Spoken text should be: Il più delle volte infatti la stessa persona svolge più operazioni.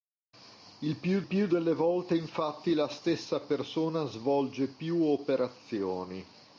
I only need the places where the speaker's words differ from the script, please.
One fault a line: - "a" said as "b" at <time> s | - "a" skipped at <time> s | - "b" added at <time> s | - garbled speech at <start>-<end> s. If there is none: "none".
- "più" added at 1.2 s